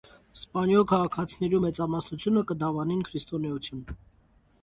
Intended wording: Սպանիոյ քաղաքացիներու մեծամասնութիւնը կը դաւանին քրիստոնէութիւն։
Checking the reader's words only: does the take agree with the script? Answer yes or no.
yes